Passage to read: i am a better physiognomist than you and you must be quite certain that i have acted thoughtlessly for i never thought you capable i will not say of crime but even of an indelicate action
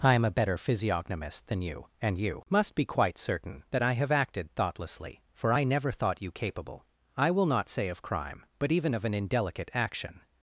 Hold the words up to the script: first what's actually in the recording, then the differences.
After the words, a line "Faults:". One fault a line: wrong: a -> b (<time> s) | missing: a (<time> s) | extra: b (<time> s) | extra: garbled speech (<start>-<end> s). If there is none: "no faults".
i am a better physiognomist than you and you must be quite certain that i have acted thoughtlessly for i never thought you capable i will not say of crime but even of an indelicate action
Faults:
no faults